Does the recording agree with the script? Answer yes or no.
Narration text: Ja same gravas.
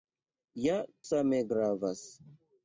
yes